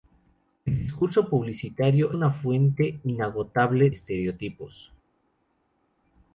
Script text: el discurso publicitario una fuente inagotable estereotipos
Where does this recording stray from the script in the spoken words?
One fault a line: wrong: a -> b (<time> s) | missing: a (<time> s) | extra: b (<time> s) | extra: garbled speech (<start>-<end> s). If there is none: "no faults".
no faults